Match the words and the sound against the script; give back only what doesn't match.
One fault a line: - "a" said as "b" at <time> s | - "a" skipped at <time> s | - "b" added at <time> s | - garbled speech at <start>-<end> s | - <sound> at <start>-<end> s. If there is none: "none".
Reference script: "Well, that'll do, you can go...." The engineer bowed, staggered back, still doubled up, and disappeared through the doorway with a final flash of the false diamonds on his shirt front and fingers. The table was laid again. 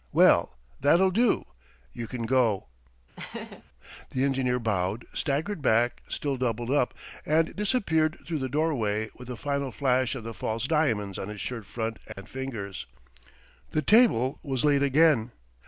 - laugh at 3.2-3.6 s
- dropout at 12.1-12.2 s